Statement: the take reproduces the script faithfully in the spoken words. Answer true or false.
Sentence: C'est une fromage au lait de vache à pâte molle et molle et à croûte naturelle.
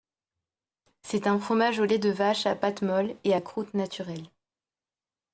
false